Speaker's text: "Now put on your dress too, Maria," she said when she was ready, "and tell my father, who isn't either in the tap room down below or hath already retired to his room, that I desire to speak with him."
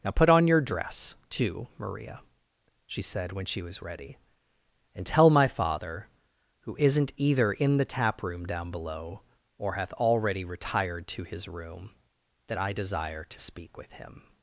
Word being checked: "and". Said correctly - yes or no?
yes